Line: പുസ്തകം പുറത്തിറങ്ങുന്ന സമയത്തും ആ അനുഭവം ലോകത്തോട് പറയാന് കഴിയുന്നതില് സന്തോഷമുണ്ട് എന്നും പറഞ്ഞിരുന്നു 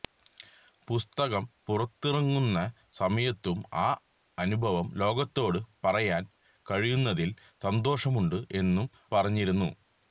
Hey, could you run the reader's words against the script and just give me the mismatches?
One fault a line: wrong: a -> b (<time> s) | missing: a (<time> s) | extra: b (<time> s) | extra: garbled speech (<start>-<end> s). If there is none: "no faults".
no faults